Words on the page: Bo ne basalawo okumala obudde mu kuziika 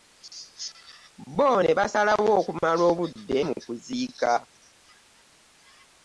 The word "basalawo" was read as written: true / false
true